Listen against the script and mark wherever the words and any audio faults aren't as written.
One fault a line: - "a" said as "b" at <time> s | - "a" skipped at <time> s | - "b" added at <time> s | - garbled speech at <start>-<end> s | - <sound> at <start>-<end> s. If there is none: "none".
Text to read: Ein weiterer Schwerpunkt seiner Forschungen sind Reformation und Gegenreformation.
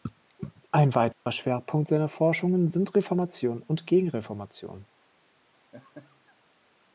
- dropout at 1.1-1.3 s
- laugh at 5.5-6.4 s